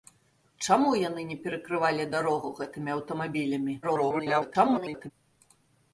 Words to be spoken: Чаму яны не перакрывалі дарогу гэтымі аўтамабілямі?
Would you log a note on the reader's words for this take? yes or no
yes